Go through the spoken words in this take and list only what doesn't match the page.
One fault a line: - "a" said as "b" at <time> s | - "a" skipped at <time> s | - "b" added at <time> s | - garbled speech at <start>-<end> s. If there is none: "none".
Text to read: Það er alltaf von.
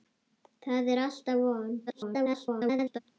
- garbled speech at 1.9-3.0 s